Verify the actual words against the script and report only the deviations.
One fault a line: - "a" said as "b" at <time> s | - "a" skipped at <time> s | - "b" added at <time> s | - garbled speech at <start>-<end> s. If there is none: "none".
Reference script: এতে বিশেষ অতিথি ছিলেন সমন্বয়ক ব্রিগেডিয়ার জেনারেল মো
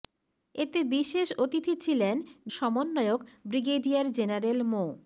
none